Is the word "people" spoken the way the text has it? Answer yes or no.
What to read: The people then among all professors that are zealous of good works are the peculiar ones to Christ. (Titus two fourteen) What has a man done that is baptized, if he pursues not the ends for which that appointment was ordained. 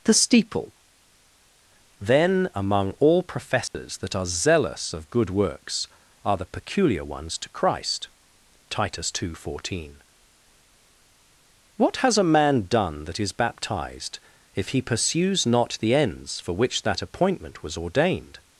no